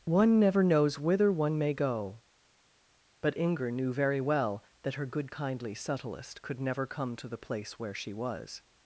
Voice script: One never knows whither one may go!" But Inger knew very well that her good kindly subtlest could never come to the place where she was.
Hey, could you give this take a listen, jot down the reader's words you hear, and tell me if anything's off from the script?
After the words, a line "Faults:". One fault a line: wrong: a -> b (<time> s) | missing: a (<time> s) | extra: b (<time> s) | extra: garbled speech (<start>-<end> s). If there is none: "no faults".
One never knows whither one may go!" But Inger knew very well that her good kindly subtlest could never come to the place where she was.
Faults:
no faults